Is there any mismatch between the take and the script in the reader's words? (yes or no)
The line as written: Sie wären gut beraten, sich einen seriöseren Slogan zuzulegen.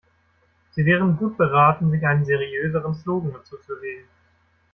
no